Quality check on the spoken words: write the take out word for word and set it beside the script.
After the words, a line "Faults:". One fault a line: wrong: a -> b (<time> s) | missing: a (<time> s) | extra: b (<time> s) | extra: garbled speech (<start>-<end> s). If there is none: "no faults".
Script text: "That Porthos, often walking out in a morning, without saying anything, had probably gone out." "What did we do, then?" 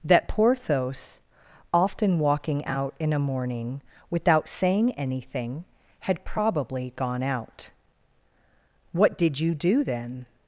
"That Porthos, often walking out in a morning, without saying anything, had probably gone out." "What did you do, then?"
Faults:
wrong: we -> you (9.4 s)